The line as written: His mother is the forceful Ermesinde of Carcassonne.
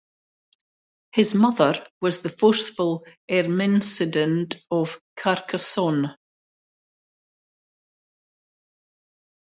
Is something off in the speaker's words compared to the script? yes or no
yes